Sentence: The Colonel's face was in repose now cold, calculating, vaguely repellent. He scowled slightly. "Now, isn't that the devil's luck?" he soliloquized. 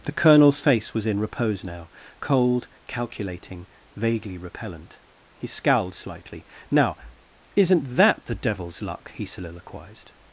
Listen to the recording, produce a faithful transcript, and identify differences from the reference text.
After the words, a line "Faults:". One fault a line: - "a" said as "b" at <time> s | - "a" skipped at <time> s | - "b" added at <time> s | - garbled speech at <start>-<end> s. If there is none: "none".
The Colonel's face was in repose now cold, calculating, vaguely repellent. He scowled slightly. "Now, isn't that the devil's luck?" he soliloquized.
Faults:
none